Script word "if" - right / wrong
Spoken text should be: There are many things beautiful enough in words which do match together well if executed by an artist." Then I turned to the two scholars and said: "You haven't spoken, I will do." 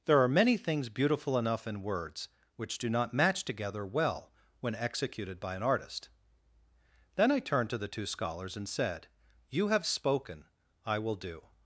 wrong